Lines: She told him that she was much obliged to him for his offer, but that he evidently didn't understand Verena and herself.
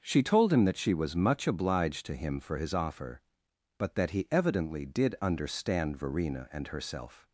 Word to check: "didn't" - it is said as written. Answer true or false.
false